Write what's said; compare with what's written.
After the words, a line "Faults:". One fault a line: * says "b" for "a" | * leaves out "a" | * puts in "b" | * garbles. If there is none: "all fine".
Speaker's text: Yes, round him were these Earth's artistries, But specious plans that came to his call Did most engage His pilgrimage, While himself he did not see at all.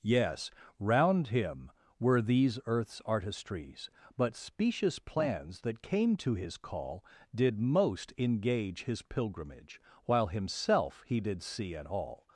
Yes, round him were these Earth's artistries, But specious plans that came to his call Did most engage His pilgrimage, While himself he did see at all.
Faults:
* leaves out "not"